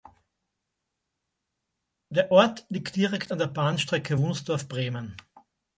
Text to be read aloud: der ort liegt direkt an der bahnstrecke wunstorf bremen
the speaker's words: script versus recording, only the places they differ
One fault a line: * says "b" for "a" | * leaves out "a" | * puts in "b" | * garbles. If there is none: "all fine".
all fine